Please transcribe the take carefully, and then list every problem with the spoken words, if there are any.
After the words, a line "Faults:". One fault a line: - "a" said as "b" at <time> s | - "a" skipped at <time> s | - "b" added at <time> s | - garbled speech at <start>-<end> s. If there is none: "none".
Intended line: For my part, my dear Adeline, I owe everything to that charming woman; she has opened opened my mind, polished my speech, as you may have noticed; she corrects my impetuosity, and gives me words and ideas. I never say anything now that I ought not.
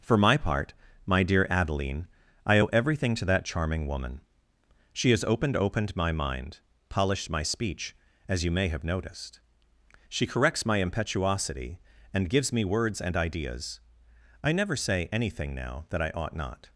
For my part, my dear Adeline, I owe everything to that charming woman; she has opened opened my mind, polished my speech, as you may have noticed; she corrects my impetuosity, and gives me words and ideas. I never say anything now that I ought not.
Faults:
none